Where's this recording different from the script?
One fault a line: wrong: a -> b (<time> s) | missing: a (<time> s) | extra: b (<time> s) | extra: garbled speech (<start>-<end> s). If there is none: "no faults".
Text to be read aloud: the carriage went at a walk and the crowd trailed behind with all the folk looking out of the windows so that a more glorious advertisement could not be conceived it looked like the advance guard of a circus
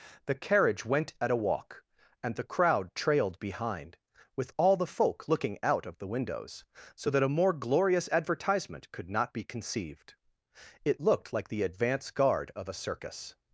no faults